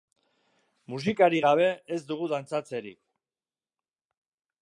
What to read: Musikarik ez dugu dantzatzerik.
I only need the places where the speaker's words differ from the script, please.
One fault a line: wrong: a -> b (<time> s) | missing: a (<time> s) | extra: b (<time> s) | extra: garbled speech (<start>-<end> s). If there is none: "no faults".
extra: gabe (1.5 s)